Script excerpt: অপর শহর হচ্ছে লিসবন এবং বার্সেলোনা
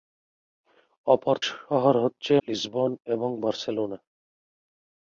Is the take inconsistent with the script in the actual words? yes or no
no